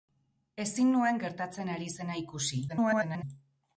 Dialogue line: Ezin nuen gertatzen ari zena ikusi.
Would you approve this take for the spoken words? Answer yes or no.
no